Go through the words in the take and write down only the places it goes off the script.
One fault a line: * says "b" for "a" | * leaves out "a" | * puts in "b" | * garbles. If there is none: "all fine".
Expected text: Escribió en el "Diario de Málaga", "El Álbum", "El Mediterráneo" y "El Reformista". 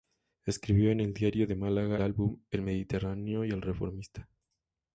* leaves out "El"